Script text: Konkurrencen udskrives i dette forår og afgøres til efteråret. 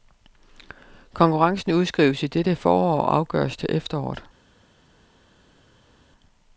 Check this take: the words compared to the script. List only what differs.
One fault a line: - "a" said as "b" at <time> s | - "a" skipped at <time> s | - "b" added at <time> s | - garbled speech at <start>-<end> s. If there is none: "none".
none